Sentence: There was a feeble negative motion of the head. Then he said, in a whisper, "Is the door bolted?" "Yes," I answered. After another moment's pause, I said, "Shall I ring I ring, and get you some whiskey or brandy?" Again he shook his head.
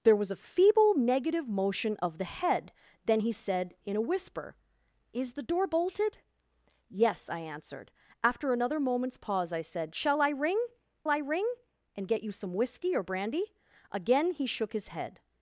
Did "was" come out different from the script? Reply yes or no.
no